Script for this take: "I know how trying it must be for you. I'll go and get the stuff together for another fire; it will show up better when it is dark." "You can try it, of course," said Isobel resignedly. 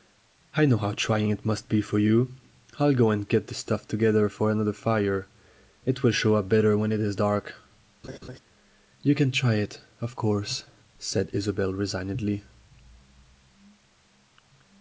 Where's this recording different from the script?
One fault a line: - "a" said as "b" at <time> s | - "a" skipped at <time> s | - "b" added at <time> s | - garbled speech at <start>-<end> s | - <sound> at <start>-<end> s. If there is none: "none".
- laugh at 8.0-8.4 s